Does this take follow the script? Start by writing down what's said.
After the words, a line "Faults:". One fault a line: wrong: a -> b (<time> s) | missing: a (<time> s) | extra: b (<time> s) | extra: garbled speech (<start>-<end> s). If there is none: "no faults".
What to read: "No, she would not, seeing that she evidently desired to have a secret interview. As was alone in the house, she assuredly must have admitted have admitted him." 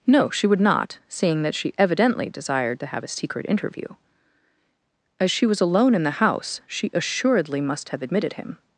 "No, she would not, seeing that she evidently desired to have a secret interview. As she was alone in the house, she assuredly must have admitted him."
Faults:
extra: she (5.3 s)
missing: have admitted (8.3 s)